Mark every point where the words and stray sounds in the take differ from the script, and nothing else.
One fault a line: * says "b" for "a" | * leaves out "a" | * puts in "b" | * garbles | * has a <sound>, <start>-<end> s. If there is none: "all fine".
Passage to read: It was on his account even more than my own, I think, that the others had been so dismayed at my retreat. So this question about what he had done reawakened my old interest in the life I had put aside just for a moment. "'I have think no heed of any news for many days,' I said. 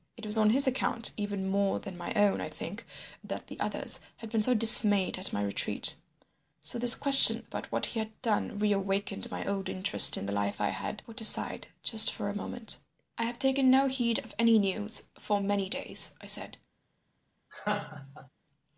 * says "taken" for "think"
* has a laugh, 17.5-18.3 s